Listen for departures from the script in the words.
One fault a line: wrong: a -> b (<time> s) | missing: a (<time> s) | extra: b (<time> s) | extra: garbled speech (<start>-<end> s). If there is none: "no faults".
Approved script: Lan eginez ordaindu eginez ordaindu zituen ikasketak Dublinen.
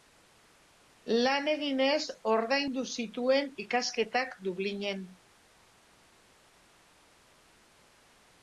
missing: eginez ordaindu (2.8 s)